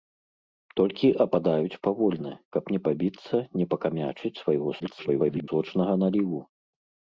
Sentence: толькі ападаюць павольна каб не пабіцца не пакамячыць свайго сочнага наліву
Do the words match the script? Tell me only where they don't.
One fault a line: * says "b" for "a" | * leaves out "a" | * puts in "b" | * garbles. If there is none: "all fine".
* garbles